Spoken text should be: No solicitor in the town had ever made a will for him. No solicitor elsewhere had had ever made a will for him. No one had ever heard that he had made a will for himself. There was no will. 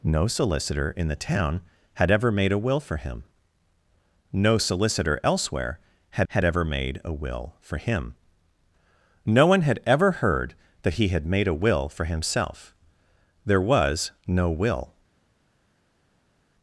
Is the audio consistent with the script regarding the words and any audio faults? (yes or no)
yes